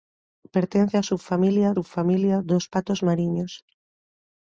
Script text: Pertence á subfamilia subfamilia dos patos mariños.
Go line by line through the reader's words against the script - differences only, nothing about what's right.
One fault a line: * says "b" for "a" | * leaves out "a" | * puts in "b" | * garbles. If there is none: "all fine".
all fine